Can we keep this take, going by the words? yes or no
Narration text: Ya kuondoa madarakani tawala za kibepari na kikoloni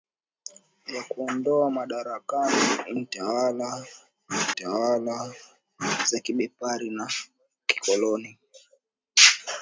no